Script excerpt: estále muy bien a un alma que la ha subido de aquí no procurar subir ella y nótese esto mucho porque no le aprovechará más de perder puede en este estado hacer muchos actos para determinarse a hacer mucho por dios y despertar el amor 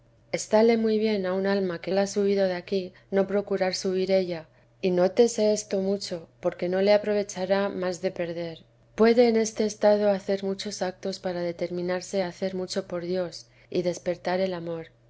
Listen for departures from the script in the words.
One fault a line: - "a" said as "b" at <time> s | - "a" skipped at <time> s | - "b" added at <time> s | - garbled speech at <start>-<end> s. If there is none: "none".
none